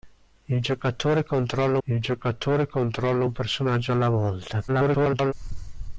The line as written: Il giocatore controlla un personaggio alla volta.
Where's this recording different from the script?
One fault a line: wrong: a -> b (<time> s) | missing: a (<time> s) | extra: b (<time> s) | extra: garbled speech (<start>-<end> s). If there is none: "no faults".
extra: il giocatore controlla (1.9 s)
extra: garbled speech (4.7-5.3 s)